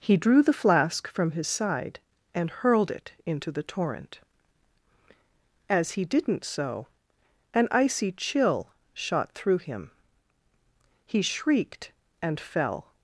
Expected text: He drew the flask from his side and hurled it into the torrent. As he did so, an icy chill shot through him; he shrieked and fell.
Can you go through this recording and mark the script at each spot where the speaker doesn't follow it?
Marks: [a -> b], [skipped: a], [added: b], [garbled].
He drew the flask from his side and hurled it into the torrent. As he [did -> didn't] so, an icy chill shot through him; he shrieked and fell.